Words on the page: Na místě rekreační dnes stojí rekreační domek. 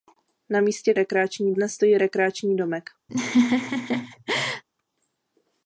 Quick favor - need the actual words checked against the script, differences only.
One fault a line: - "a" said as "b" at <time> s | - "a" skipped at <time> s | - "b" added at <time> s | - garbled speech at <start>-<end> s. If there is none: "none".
none